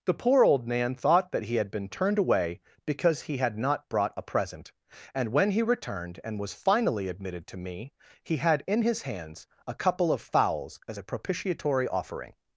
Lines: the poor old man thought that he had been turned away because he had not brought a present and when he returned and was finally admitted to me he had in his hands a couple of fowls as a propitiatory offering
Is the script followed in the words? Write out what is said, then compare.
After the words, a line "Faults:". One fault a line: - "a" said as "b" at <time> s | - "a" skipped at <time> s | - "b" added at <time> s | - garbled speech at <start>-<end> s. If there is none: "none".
the poor old man thought that he had been turned away because he had not brought a present and when he returned and was finally admitted to me he had in his hands a couple of fowls as a propitiatory offering
Faults:
none